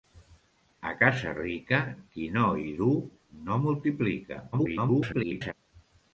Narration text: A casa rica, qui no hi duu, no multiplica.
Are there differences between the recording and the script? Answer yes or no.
yes